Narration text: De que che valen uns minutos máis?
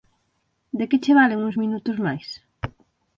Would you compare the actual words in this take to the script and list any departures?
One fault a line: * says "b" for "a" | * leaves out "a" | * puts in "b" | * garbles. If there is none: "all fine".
all fine